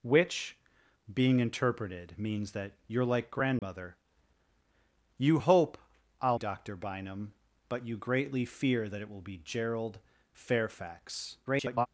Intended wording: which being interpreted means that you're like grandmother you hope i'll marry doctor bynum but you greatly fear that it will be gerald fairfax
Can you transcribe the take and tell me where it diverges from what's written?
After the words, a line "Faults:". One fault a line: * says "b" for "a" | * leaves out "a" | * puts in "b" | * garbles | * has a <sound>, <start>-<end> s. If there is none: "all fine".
which being interpreted means that you're like grandmother you hope i'll doctor bynum but you greatly fear that it will be gerald fairfax [garbled]
Faults:
* has a dropout, 3.6-3.6 s
* leaves out "marry"
* garbles